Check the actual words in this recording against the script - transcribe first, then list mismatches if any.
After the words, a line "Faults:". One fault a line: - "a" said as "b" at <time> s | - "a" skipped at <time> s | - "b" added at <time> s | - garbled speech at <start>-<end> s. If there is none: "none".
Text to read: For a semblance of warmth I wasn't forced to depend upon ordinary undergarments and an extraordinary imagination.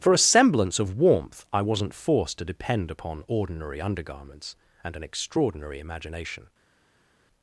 For a semblance of warmth I wasn't forced to depend upon ordinary undergarments and an extraordinary imagination.
Faults:
none